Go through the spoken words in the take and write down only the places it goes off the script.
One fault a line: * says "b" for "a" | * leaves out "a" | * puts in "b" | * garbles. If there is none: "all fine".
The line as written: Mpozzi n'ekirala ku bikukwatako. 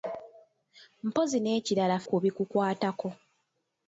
all fine